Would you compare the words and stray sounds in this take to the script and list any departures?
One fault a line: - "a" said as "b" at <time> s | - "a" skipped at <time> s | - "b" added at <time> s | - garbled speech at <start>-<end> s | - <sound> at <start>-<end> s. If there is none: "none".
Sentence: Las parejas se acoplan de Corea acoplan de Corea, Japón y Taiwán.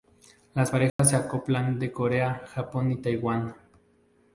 - dropout at 0.9-1.0 s
- "acoplan de Corea" skipped at 2.4 s